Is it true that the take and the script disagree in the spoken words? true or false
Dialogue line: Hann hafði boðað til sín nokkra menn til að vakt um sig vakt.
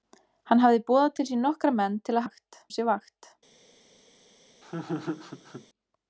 false